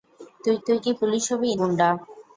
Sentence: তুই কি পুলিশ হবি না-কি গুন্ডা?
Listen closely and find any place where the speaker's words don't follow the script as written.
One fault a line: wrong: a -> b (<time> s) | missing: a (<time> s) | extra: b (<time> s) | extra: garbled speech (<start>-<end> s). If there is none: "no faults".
extra: তুই (0.7 s)
missing: না-কি (1.5 s)